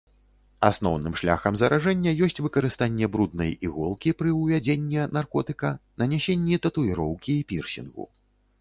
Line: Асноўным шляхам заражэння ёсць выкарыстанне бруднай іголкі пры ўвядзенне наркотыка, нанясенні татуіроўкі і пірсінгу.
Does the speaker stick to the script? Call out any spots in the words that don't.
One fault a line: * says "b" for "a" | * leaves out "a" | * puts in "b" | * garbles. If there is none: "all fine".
all fine